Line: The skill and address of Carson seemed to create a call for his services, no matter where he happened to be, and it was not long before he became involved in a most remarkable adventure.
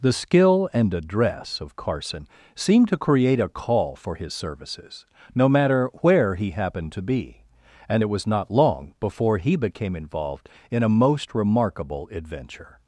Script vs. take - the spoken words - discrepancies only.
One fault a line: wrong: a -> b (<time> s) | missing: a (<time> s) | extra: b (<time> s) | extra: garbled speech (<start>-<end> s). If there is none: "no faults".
no faults